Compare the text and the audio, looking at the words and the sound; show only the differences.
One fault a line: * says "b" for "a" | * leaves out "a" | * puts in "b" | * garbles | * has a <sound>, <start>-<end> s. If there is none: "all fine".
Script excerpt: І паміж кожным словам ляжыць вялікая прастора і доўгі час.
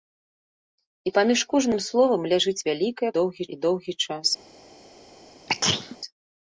* says "доўгі" for "прастора"
* has a sneeze, 5.5-6.0 s